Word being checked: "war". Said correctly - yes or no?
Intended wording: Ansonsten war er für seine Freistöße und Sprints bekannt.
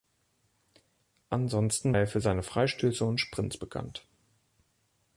no